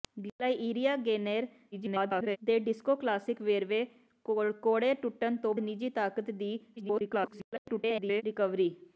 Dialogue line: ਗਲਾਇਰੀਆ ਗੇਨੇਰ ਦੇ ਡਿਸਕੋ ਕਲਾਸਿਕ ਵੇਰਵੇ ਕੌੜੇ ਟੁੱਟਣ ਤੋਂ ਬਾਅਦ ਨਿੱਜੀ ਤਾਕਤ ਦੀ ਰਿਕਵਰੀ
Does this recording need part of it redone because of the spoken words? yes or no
yes